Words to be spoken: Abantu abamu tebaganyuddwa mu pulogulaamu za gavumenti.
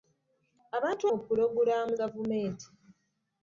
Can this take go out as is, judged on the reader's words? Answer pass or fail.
fail